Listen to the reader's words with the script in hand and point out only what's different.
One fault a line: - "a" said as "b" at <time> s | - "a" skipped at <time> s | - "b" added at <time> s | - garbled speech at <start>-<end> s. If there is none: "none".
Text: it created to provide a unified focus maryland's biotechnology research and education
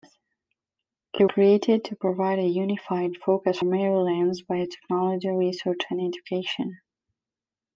none